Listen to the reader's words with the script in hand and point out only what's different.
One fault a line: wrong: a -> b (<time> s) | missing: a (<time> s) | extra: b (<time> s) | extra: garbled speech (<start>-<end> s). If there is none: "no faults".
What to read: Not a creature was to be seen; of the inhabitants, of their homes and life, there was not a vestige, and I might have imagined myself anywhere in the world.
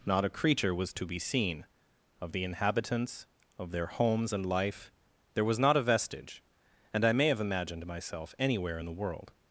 wrong: might -> may (7.1 s)